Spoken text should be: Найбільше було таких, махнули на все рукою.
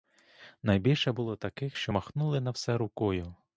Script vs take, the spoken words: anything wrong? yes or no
yes